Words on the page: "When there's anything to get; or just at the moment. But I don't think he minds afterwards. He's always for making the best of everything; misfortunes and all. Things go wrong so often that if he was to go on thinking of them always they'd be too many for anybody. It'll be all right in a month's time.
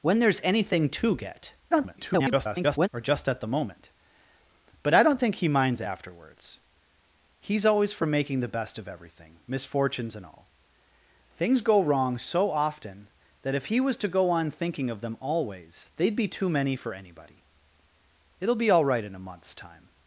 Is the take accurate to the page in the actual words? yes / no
no